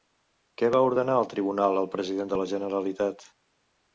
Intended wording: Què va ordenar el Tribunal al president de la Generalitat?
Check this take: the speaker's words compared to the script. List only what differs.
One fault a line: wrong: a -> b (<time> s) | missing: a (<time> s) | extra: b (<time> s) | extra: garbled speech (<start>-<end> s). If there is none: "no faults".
no faults